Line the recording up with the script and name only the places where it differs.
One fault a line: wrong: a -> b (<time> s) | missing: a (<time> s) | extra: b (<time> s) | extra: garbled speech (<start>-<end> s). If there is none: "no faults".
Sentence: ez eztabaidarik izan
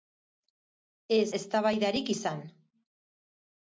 no faults